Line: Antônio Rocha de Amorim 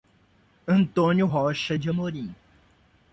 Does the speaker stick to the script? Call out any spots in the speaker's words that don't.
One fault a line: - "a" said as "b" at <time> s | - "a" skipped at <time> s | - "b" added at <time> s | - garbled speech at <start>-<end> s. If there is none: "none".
none